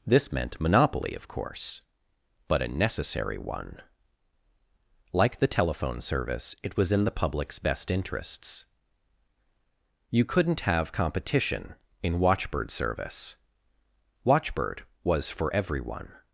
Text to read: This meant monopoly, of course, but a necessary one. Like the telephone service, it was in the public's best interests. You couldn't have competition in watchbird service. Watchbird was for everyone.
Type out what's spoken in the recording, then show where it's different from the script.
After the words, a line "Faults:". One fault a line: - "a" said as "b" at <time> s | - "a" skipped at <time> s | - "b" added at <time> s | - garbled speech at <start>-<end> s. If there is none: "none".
This meant monopoly, of course, but a necessary one. Like the telephone service, it was in the public's best interests. You couldn't have competition in watchbird service. Watchbird was for everyone.
Faults:
none